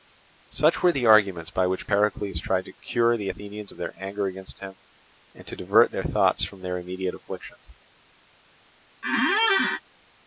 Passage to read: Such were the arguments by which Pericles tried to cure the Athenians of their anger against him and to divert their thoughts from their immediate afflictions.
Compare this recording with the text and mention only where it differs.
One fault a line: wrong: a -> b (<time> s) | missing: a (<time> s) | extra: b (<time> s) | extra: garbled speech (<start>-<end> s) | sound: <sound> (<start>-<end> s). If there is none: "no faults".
sound: squeak (9.0-9.8 s)